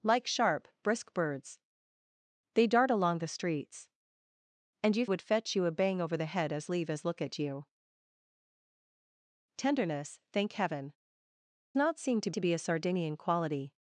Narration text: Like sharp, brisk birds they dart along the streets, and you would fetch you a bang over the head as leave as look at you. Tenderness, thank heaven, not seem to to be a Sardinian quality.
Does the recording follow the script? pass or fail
pass